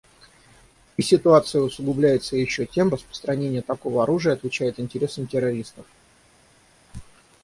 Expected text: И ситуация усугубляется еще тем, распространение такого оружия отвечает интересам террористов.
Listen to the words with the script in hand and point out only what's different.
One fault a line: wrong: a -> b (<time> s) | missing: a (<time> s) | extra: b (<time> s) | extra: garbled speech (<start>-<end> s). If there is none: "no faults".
no faults